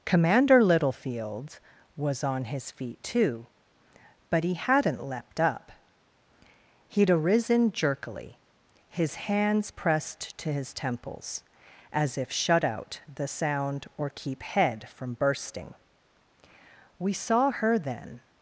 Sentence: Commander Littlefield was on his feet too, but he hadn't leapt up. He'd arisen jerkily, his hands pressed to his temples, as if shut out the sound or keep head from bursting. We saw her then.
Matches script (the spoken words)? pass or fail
pass